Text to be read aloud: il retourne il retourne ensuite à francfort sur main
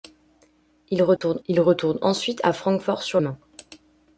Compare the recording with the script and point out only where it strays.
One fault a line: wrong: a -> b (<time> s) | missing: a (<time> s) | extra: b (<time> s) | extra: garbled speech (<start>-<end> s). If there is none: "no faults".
no faults